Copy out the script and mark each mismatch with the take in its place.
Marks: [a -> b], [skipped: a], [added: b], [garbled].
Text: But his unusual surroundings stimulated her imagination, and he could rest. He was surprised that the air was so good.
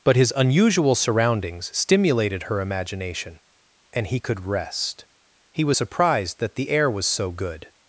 But his unusual surroundings stimulated her imagination, and he could rest. He was surprised that the air was so good.